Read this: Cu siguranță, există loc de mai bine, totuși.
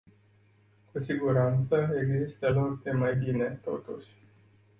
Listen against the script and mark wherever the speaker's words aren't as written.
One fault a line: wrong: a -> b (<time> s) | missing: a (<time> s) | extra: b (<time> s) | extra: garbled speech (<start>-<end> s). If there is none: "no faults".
no faults